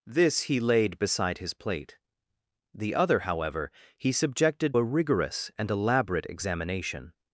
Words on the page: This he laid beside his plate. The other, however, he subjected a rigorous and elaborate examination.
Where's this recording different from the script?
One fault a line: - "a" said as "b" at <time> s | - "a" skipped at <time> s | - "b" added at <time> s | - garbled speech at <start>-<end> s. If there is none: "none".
none